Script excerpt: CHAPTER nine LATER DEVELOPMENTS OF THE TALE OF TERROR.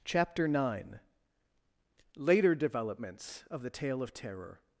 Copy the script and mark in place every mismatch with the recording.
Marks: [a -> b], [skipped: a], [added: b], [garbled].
CHAPTER nine LATER DEVELOPMENTS OF THE TALE OF TERROR.